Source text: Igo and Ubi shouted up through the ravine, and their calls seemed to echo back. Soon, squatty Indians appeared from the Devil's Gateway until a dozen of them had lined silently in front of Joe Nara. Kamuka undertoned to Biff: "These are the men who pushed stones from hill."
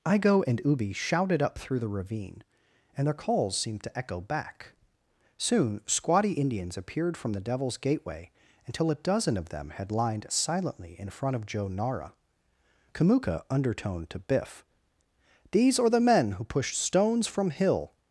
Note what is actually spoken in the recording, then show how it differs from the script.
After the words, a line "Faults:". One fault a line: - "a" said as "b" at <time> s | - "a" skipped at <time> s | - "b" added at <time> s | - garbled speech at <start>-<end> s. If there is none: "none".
Igo and Ubi shouted up through the ravine, and their calls seemed to echo back. Soon, squatty Indians appeared from the Devil's Gateway until a dozen of them had lined silently in front of Joe Nara. Kamuka undertoned to Biff: "These are the men who pushed stones from hill."
Faults:
none